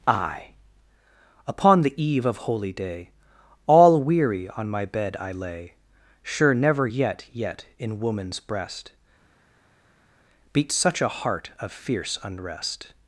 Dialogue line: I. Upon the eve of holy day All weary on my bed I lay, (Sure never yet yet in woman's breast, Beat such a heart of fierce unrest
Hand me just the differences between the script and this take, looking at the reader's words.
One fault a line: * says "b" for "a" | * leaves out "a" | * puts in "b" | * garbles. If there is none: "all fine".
all fine